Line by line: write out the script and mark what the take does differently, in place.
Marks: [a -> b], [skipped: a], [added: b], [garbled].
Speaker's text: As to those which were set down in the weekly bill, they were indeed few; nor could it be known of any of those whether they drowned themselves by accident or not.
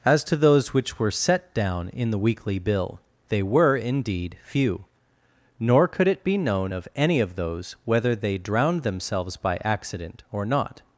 As to those which were set down in the weekly bill, they were indeed few; nor could it be known of any of those whether they drowned themselves by accident or not.